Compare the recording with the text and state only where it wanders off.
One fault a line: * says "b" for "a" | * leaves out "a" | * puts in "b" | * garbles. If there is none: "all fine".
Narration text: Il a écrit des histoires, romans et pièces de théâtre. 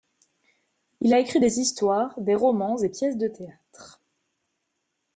* puts in "des"